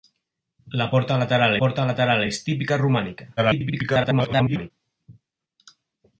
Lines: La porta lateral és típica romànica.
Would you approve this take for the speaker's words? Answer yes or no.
no